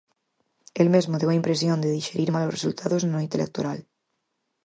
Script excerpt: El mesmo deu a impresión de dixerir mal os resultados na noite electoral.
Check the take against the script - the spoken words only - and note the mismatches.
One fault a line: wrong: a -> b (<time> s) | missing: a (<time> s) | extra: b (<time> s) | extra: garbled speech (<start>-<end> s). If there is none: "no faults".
no faults